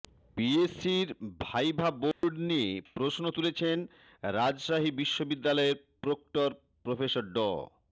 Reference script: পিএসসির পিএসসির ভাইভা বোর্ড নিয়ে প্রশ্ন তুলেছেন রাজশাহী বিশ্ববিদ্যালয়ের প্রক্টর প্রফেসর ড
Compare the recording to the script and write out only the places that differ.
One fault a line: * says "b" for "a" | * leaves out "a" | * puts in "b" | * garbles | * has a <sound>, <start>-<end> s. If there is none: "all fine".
* leaves out "পিএসসির"
* has a dropout, 2.1-2.2 s